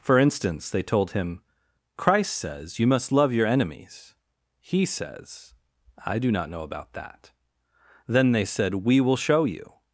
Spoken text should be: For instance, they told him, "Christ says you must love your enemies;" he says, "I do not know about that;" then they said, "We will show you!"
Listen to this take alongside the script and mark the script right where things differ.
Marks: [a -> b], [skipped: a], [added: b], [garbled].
For instance, they told him, "Christ says you must love your enemies;" he says, "I do not know about that;" then they said, "We will show you!"